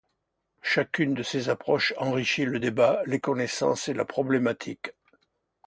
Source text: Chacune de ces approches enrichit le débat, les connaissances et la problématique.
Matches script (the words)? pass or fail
pass